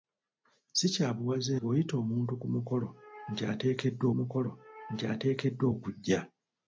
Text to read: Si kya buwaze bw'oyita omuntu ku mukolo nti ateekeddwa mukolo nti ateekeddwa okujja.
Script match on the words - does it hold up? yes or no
yes